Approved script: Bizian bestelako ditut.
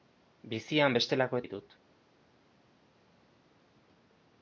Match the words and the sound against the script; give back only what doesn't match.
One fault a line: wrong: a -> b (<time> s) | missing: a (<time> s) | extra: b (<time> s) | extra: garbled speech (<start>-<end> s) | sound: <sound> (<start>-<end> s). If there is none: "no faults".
no faults